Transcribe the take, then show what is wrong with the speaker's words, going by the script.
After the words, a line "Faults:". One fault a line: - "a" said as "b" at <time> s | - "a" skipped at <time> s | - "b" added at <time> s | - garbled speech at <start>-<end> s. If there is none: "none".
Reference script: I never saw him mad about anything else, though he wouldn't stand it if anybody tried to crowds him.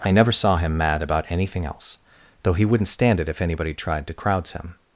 I never saw him mad about anything else, though he wouldn't stand it if anybody tried to crowds him.
Faults:
none